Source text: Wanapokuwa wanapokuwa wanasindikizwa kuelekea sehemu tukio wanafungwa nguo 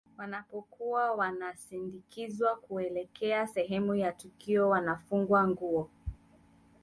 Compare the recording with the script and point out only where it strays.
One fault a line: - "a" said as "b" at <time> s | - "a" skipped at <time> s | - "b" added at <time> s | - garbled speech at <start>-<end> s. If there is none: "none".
- "wanapokuwa" skipped at 1.1 s
- "ya" added at 4.0 s